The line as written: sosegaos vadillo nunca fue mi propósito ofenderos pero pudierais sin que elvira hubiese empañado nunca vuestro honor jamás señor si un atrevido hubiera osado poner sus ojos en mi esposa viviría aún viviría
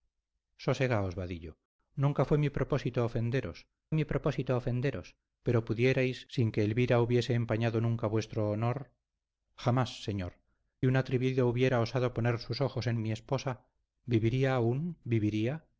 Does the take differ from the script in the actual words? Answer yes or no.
yes